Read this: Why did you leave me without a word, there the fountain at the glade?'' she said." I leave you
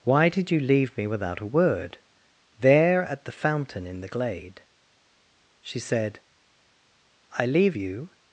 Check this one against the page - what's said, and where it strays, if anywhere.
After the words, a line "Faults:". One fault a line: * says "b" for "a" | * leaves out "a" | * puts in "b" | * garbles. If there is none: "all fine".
Why did you leave me without a word, there at the fountain in the glade?'' she said." I leave you
Faults:
* puts in "at"
* says "in" for "at"